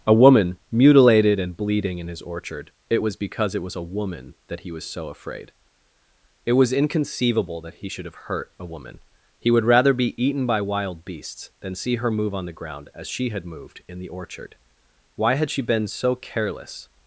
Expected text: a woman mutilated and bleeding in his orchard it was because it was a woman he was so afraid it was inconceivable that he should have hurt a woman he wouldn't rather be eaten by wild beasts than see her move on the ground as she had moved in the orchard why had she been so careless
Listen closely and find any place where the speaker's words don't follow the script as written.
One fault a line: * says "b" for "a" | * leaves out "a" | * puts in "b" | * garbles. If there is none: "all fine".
* puts in "that"
* says "would" for "wouldn't"